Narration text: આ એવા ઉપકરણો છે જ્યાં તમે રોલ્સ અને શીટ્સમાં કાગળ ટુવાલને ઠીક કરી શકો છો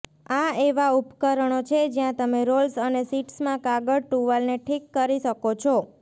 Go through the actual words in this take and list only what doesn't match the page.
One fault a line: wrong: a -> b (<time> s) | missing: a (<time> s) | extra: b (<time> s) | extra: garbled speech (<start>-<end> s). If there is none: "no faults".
no faults